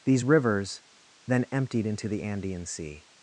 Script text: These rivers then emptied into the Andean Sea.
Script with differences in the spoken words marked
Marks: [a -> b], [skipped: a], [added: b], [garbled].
These rivers then emptied into the Andean Sea.